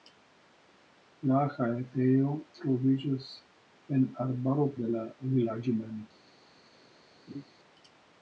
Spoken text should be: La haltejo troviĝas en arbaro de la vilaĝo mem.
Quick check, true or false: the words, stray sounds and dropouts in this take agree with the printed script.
false